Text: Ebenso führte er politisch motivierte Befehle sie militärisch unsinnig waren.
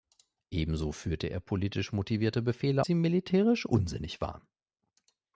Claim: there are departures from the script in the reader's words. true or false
false